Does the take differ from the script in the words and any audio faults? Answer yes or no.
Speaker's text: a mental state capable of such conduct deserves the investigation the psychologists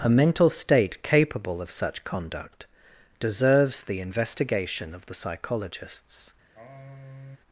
yes